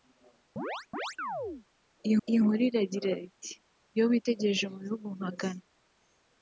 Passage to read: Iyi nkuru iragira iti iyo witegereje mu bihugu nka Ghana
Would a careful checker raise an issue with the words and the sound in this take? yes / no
yes